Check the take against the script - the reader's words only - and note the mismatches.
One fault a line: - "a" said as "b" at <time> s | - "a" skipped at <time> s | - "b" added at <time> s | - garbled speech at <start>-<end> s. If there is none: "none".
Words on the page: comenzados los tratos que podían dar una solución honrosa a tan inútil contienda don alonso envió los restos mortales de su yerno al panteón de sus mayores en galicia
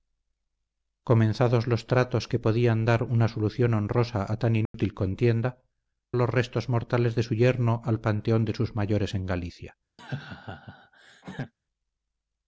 - "don alonso envió" skipped at 5.6 s